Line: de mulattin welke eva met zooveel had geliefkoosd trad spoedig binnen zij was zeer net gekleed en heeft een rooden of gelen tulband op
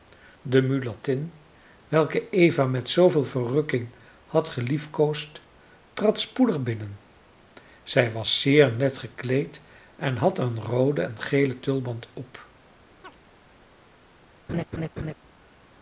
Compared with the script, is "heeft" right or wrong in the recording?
wrong